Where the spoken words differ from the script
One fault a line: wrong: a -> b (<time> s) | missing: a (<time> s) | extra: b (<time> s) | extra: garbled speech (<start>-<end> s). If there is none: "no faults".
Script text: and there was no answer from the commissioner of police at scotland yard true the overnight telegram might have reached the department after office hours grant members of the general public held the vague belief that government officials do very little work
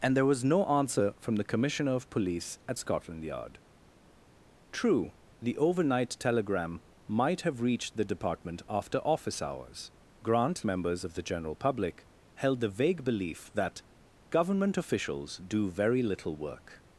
no faults